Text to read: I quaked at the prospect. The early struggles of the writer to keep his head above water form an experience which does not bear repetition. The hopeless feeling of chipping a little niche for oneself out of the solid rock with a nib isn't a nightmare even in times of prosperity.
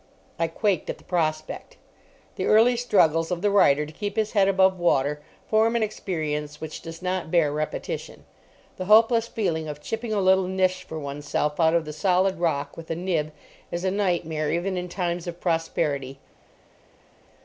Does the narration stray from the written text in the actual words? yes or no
yes